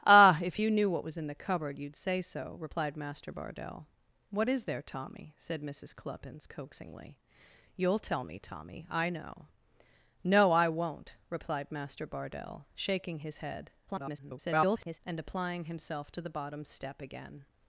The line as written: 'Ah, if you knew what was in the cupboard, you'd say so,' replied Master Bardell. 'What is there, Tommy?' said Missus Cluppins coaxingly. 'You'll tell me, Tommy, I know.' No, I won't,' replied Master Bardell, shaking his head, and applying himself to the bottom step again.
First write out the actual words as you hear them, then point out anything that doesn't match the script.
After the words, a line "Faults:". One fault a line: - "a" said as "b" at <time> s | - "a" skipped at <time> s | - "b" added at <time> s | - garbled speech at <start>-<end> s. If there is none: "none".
'Ah, if you knew what was in the cupboard, you'd say so,' replied Master Bardell. 'What is there, Tommy?' said Missus Cluppins coaxingly. 'You'll tell me, Tommy, I know.' No, I won't,' replied Master Bardell, shaking his head, [garbled] and applying himself to the bottom step again.
Faults:
- garbled speech at 13.9-15.0 s